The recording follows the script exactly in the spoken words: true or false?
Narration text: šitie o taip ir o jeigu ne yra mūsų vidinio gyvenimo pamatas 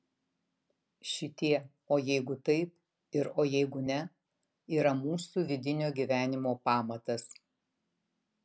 false